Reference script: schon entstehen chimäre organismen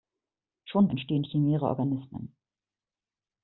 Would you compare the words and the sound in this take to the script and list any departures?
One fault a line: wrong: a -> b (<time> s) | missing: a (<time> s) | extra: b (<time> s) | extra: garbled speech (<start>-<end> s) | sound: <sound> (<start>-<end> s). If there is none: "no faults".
no faults